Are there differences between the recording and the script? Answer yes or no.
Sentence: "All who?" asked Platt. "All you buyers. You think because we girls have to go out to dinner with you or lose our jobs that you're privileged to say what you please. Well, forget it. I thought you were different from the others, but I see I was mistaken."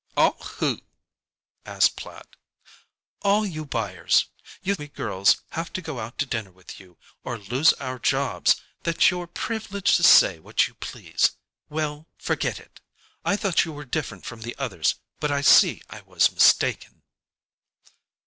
yes